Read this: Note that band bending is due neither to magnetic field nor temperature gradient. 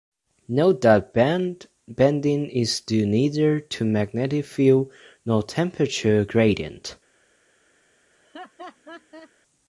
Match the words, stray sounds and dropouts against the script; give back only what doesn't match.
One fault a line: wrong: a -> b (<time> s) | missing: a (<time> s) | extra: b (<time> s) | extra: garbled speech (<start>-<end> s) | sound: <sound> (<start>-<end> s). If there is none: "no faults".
sound: laugh (8.1-9.3 s)